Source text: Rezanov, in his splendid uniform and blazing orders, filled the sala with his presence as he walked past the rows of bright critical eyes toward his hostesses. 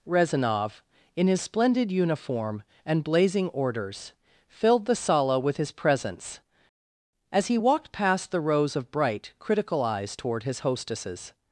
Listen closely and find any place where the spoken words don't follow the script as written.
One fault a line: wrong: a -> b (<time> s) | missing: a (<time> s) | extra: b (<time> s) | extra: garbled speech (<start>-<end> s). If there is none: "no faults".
no faults